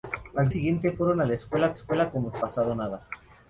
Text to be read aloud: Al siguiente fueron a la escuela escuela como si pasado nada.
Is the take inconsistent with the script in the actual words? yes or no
no